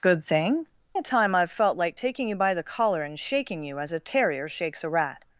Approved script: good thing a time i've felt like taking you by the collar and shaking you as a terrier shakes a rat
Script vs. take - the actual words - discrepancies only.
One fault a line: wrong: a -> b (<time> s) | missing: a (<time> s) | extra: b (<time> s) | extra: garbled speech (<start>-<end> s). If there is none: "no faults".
no faults